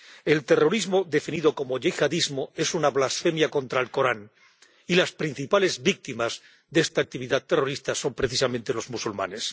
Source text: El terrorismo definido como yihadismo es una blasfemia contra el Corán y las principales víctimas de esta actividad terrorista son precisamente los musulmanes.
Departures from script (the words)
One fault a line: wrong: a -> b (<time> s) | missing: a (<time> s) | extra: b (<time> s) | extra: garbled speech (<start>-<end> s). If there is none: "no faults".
no faults